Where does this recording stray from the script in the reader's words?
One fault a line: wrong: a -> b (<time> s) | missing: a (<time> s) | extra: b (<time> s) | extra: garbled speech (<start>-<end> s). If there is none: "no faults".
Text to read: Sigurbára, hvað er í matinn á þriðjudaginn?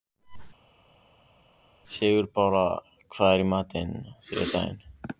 no faults